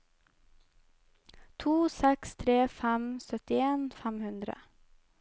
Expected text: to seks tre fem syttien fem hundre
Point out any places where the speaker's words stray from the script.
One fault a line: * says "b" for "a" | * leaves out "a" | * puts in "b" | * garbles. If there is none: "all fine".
all fine